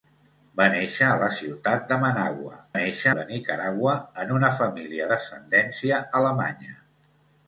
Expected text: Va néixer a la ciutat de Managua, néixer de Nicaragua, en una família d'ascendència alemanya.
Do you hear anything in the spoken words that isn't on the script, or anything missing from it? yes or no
no